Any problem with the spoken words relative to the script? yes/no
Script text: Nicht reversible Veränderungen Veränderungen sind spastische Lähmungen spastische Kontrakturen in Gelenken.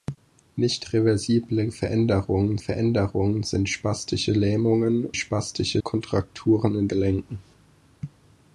no